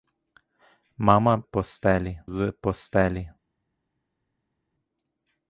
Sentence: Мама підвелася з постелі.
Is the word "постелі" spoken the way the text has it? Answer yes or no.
yes